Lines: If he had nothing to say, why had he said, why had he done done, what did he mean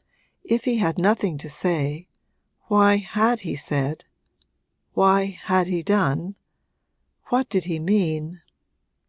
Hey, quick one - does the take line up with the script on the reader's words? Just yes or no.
no